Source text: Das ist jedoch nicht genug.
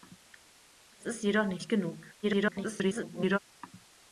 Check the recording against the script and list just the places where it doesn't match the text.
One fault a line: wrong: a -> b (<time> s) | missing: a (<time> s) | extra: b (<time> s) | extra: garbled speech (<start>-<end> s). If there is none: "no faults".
extra: garbled speech (2.2-3.4 s)